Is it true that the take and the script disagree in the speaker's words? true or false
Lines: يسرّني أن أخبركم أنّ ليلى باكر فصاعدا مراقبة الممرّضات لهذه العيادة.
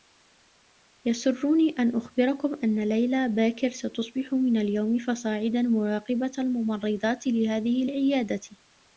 true